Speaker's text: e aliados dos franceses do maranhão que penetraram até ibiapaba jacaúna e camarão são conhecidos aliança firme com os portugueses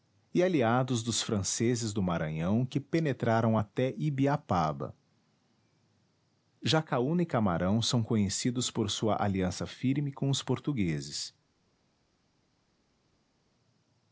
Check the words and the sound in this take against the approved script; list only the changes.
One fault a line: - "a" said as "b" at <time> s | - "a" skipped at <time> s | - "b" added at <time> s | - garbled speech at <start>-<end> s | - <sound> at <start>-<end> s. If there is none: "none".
- "por sua" added at 8.7 s